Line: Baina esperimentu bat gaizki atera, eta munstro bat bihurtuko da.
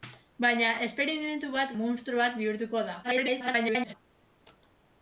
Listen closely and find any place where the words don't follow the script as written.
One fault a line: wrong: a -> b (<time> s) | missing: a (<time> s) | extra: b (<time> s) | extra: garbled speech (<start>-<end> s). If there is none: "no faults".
missing: gaizki atera eta (1.8 s)
extra: garbled speech (3.0-3.9 s)